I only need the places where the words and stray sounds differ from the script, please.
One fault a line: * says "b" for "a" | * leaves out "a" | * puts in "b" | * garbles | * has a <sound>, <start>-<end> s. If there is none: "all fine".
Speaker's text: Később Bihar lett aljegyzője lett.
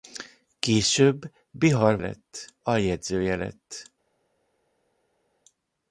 all fine